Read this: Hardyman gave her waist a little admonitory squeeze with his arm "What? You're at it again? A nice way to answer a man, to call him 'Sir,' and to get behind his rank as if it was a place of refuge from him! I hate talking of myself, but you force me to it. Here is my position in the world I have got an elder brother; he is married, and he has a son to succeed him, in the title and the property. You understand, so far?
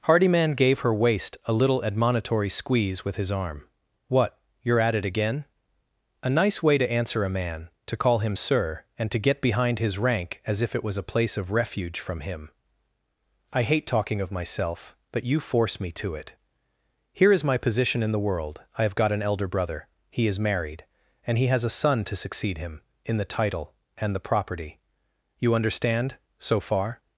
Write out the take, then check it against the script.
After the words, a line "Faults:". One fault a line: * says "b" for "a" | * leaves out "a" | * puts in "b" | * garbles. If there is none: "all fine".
Hardyman gave her waist a little admonitory squeeze with his arm "What? You're at it again? A nice way to answer a man, to call him 'Sir,' and to get behind his rank as if it was a place of refuge from him! I hate talking of myself, but you force me to it. Here is my position in the world I have got an elder brother; he is married, and he has a son to succeed him, in the title and the property. You understand, so far?
Faults:
all fine